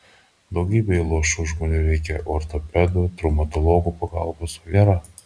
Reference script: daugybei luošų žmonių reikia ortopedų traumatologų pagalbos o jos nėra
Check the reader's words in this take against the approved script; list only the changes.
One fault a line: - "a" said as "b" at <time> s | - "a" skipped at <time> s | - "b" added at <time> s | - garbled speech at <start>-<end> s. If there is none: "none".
- "jos" skipped at 4.8 s